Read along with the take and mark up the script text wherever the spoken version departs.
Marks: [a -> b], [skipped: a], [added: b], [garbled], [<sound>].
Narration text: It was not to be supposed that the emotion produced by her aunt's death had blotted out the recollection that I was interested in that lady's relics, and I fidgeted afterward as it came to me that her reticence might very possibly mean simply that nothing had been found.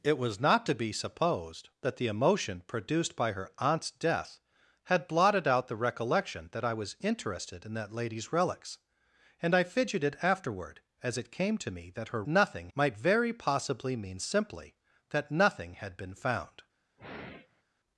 It was not to be supposed that the emotion produced by her aunt's death had blotted out the recollection that I was interested in that lady's relics, and I fidgeted afterward as it came to me that her [reticence -> nothing] might very possibly mean simply that nothing had been found. [sigh]